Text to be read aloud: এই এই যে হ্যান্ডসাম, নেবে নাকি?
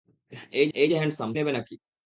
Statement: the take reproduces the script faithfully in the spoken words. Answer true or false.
true